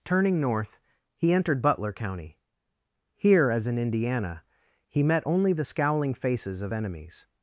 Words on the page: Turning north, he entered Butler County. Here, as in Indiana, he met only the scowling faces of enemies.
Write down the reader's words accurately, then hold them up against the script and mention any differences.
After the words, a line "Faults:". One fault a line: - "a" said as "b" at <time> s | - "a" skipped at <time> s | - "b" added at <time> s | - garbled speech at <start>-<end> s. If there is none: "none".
Turning north, he entered Butler County. Here, as in Indiana, he met only the scowling faces of enemies.
Faults:
none